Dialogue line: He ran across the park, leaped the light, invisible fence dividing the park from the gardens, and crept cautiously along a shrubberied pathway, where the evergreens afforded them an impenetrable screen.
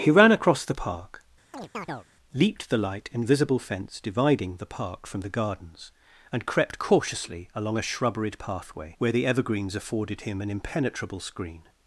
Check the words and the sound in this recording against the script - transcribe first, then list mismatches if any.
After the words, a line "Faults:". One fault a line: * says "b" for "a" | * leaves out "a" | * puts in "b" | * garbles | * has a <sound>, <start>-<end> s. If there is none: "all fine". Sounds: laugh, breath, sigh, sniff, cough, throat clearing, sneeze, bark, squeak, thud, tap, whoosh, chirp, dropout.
He ran across the park, leaped the light, invisible fence dividing the park from the gardens, and crept cautiously along a shrubberied pathway, where the evergreens afforded him an impenetrable screen.
Faults:
* has a chirp, 1.5-2.1 s
* says "him" for "them"